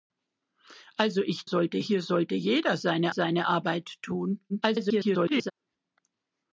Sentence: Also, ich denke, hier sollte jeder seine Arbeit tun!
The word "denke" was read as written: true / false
false